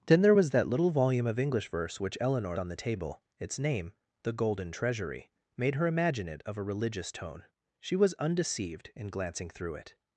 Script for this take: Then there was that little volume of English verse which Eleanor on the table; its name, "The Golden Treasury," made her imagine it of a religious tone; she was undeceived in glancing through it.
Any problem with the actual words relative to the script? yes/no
no